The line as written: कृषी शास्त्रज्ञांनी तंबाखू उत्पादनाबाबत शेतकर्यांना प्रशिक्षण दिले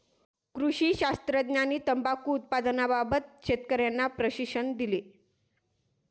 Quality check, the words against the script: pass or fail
pass